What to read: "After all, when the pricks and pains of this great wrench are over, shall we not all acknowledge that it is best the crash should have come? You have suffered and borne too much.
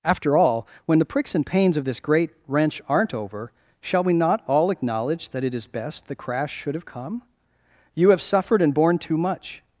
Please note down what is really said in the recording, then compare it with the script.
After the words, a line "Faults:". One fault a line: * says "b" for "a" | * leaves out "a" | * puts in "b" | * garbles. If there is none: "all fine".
"After all, when the pricks and pains of this great wrench aren't over, shall we not all acknowledge that it is best the crash should have come? You have suffered and borne too much.
Faults:
* says "aren't" for "are"